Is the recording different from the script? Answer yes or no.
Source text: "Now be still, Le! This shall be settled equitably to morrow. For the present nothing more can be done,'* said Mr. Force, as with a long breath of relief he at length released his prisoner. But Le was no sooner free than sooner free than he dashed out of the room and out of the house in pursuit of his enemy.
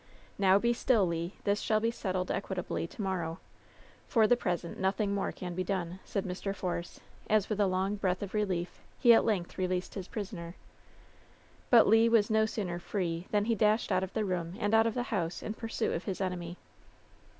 yes